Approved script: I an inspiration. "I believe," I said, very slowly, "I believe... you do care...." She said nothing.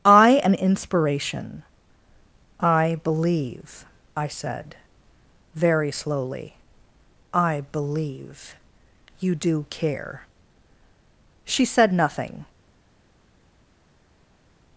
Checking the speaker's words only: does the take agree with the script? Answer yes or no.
yes